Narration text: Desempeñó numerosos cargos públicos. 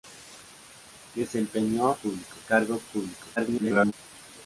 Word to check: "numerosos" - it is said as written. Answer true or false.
false